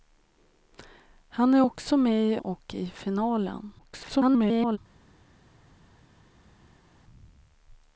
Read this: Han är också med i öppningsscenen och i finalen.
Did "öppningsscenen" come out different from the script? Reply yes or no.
yes